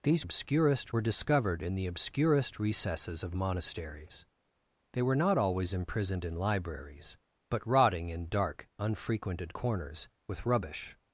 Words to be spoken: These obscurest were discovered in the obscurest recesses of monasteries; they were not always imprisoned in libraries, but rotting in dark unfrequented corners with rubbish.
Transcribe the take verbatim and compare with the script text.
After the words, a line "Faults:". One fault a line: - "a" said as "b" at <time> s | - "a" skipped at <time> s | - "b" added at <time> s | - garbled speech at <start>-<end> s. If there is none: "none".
These obscurest were discovered in the obscurest recesses of monasteries; they were not always imprisoned in libraries, but rotting in dark unfrequented corners with rubbish.
Faults:
none